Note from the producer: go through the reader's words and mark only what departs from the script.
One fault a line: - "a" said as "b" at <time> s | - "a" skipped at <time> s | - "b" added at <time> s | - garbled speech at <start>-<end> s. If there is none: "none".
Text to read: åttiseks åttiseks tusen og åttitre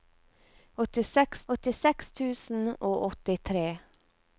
none